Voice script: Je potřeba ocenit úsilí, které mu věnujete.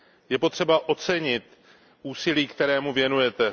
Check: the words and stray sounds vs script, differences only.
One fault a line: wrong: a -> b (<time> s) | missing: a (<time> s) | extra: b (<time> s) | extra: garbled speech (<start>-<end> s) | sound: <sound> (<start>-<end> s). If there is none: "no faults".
no faults